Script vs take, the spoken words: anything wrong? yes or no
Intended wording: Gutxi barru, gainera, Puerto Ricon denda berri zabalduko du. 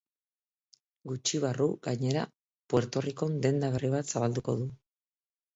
yes